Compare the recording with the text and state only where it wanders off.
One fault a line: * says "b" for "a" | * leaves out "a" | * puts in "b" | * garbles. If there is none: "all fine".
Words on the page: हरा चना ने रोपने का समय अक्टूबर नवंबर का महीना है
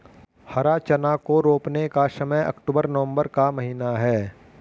* says "को" for "ने"